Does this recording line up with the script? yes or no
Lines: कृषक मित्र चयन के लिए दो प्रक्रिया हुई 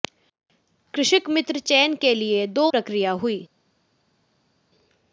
yes